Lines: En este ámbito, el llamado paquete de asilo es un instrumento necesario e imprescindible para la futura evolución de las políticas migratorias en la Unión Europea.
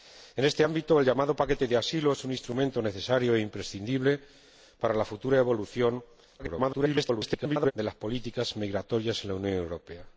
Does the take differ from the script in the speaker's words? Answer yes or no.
yes